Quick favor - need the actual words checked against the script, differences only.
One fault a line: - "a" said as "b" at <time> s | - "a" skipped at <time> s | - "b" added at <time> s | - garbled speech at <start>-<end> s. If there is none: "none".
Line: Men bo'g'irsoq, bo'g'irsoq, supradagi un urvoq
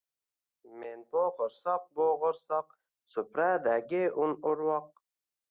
none